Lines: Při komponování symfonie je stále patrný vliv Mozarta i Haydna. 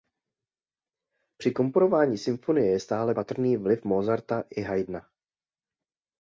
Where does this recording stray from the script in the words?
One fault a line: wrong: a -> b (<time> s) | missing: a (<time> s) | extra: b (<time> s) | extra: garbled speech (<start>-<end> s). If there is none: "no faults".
no faults